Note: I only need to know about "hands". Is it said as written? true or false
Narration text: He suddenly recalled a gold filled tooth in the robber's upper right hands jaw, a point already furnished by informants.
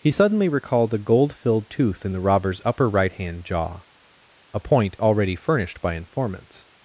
false